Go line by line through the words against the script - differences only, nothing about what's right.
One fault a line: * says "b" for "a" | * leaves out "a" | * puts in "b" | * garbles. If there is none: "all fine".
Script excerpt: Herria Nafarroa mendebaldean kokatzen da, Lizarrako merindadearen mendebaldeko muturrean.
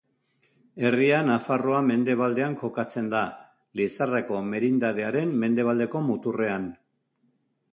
all fine